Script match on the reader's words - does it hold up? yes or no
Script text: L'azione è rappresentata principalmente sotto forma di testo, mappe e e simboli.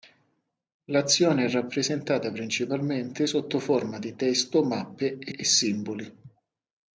yes